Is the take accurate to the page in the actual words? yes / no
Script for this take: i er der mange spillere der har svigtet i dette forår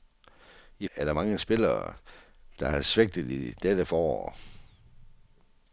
yes